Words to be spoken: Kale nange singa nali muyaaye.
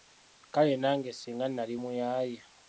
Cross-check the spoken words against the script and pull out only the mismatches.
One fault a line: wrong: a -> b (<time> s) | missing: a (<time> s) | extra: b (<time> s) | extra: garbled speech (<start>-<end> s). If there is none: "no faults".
no faults